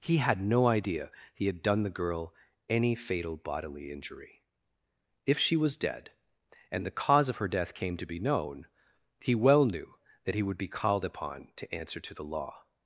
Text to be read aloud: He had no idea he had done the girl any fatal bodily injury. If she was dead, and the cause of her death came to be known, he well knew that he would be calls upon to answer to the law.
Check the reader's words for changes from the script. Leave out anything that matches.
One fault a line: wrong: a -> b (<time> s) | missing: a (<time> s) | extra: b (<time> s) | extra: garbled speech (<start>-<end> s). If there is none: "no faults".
wrong: calls -> called (10.7 s)